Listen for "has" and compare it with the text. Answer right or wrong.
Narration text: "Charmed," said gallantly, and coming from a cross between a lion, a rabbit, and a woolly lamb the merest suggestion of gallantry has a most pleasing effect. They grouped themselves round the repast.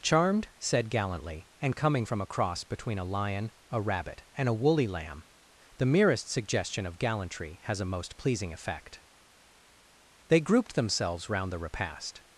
right